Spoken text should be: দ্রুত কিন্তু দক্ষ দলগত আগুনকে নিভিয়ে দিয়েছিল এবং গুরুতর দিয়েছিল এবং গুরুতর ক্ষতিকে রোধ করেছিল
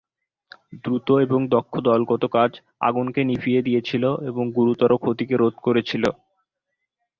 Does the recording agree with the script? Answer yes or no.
no